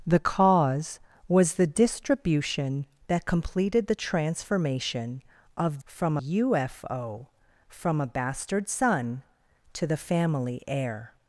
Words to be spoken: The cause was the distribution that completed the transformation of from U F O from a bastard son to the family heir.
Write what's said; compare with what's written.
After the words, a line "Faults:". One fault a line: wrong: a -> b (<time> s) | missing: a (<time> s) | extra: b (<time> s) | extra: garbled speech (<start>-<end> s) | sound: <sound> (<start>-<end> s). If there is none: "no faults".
The cause was the distribution that completed the transformation of from U F O from a bastard son to the family heir.
Faults:
no faults